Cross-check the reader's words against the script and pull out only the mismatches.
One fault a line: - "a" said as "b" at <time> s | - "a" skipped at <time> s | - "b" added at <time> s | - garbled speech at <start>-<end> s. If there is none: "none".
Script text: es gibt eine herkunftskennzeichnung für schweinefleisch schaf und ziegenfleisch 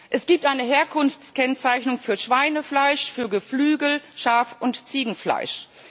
- "für geflügel" added at 3.1 s